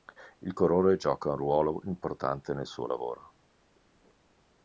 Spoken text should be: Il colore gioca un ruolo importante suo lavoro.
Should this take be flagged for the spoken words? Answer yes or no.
yes